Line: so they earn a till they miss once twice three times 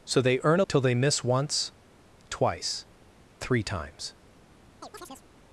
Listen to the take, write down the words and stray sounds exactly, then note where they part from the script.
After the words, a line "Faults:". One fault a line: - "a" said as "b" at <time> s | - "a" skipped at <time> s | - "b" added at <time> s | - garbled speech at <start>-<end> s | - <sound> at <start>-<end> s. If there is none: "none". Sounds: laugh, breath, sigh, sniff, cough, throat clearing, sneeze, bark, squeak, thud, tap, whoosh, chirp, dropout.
so they earn a till they miss once twice three times
Faults:
- chirp at 4.8-5.3 s